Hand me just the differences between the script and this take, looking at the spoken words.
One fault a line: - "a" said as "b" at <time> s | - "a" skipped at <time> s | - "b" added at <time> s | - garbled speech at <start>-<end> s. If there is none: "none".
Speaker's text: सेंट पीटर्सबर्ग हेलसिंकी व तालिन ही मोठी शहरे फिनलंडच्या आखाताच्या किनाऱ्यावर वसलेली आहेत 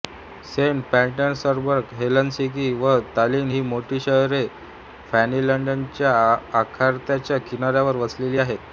none